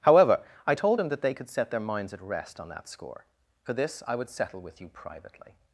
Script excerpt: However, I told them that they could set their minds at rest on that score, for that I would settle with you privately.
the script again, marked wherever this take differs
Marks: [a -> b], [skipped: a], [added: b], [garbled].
However, I told [them -> him] that they could set their minds at rest on that score, for [that -> this] I would settle with you privately.